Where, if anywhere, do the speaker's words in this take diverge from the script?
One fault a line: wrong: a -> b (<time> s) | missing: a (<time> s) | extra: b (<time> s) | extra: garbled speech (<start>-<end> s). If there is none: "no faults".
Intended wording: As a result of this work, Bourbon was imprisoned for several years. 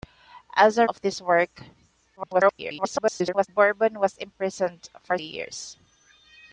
missing: result (0.9 s)
extra: garbled speech (2.2-3.5 s)
missing: several (5.2 s)